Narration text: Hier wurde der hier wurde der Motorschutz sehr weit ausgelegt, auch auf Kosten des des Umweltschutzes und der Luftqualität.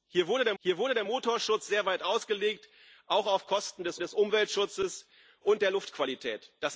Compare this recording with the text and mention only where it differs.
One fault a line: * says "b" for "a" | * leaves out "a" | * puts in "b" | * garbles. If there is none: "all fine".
all fine